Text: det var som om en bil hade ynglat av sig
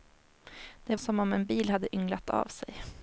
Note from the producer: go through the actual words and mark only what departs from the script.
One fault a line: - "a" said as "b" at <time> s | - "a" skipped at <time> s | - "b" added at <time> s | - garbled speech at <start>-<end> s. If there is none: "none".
- "var" skipped at 0.9 s